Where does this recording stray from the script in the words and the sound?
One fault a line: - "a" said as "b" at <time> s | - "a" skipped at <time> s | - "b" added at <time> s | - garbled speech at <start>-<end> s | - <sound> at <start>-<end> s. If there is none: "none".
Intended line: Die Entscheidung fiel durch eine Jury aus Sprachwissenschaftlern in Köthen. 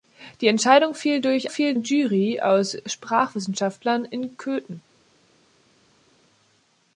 - "eine" said as "fiel" at 1.5 s